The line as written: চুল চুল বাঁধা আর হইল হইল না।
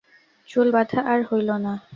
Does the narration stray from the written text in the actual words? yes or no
yes